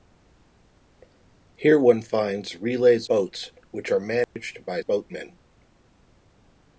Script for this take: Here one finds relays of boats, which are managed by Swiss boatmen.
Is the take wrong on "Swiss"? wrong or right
wrong